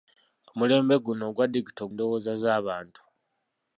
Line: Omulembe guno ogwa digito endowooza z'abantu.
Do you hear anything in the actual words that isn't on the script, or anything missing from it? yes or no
no